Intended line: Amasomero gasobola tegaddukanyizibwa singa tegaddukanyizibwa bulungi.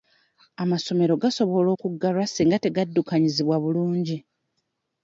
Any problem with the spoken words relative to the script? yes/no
yes